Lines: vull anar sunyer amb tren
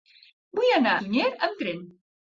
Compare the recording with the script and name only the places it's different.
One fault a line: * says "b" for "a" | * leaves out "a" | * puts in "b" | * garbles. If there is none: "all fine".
all fine